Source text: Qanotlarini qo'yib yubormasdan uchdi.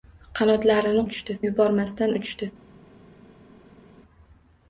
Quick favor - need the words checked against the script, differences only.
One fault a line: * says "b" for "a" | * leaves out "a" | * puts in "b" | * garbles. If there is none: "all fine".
* says "uchdi" for "qo'yib"